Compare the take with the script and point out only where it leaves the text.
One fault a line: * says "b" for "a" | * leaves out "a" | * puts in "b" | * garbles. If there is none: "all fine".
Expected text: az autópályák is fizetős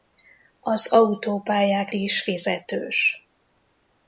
all fine